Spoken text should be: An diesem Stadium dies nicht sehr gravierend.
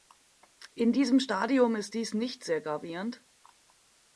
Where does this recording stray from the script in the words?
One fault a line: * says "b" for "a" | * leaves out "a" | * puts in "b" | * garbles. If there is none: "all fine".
* says "In" for "An"
* puts in "ist"